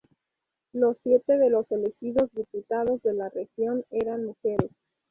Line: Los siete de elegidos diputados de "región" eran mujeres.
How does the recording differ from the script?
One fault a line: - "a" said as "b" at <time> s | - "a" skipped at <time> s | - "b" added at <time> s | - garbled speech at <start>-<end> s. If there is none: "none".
- "los" added at 1.5 s
- "la" added at 3.1 s